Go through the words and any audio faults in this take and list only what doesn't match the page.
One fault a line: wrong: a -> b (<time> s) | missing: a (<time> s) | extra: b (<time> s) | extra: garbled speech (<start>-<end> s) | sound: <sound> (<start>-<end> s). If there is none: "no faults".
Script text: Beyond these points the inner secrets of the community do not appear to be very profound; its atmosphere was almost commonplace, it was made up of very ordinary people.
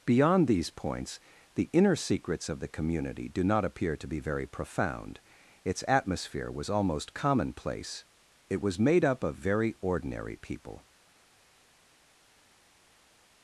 no faults